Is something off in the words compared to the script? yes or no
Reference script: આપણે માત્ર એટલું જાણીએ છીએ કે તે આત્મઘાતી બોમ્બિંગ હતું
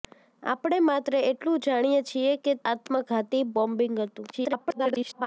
yes